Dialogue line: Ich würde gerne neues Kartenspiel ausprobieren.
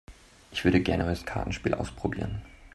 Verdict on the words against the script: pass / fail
pass